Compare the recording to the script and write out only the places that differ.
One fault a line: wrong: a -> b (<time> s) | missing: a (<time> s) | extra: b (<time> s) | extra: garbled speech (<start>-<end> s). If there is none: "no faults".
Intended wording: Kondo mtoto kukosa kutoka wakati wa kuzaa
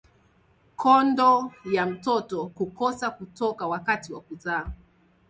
extra: ya (1.7 s)